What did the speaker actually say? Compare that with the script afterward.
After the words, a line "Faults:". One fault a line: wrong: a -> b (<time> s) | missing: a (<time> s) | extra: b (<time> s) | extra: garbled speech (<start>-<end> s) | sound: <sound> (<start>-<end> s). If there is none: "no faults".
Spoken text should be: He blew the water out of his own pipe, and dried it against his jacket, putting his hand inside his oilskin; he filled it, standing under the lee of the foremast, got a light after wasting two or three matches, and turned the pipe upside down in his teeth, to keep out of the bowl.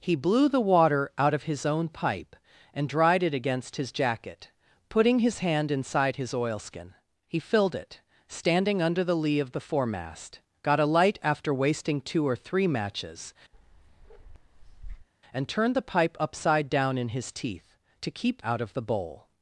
He blew the water out of his own pipe, and dried it against his jacket, putting his hand inside his oilskin; he filled it, standing under the lee of the foremast, got a light after wasting two or three matches, and turned the pipe upside down in his teeth, to keep out of the bowl.
Faults:
sound: bark (13.5-15.1 s)